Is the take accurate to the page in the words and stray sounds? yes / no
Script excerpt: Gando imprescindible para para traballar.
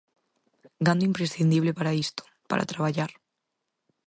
no